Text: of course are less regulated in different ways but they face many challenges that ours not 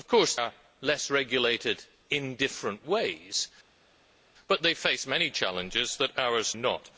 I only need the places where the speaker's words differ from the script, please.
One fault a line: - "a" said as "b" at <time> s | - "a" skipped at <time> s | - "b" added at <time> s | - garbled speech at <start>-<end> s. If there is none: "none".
none